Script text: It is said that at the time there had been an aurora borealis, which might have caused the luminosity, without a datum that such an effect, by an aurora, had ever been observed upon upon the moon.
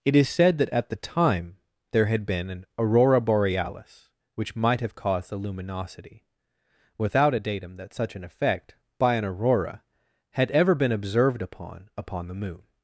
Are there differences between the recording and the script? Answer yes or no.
no